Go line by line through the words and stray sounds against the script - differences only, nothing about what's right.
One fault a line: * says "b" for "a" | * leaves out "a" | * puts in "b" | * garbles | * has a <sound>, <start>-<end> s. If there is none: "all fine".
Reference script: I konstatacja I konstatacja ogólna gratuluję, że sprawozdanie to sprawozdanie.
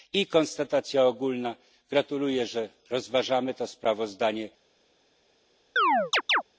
* leaves out "I konstatacja"
* says "rozważamy" for "sprawozdanie"
* has a chirp, 5.8-6.4 s